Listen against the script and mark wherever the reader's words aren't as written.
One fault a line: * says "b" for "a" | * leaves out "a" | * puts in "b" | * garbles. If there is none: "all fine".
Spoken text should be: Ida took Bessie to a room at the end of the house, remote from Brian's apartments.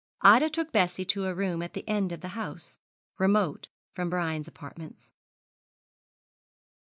all fine